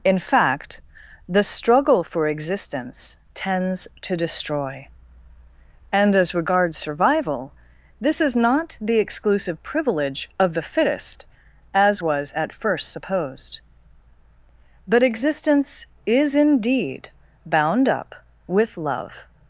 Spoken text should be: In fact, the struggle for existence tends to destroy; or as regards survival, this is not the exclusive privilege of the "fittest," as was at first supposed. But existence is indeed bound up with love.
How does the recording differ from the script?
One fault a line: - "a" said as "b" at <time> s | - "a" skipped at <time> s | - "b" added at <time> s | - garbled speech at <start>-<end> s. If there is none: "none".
- "or" said as "and" at 5.9 s